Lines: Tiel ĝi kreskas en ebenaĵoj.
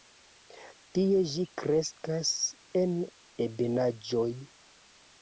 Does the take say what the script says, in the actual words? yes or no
no